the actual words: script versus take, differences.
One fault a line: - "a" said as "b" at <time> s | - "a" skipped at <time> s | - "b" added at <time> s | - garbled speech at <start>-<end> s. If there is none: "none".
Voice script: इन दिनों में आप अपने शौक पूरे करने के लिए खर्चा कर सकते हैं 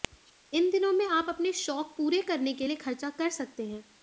none